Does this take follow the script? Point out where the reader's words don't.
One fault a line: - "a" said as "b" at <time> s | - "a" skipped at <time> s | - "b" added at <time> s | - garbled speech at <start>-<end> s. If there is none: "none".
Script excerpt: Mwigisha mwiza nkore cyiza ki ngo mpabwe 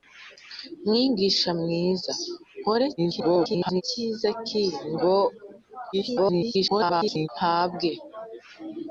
- garbled speech at 3.0-3.8 s
- garbled speech at 5.9-7.3 s